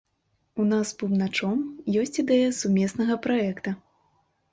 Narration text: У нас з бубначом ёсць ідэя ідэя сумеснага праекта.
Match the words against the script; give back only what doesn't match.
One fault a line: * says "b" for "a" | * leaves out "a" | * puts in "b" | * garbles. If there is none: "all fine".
* leaves out "ідэя"